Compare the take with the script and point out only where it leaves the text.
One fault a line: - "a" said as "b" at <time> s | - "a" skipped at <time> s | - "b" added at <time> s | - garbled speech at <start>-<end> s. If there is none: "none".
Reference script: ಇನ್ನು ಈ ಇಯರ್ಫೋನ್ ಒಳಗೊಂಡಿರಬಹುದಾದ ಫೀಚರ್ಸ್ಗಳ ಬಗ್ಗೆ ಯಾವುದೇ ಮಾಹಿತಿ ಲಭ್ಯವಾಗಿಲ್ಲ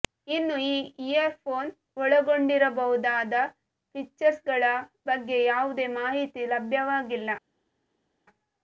none